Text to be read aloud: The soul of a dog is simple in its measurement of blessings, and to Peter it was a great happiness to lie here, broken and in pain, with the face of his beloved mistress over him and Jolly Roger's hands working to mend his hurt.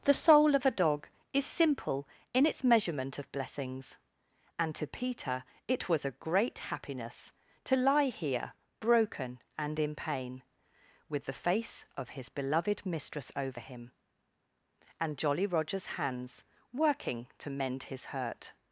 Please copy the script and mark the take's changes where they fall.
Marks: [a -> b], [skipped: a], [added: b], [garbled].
The soul of a dog is simple in its measurement of blessings, and to Peter it was a great happiness to lie here, broken and in pain, with the face of his beloved mistress over him and Jolly Roger's hands working to mend his hurt.